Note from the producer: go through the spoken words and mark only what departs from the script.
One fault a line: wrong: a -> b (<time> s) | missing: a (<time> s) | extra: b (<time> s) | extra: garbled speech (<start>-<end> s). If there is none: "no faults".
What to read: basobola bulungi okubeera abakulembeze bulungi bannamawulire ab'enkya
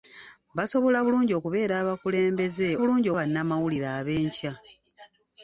no faults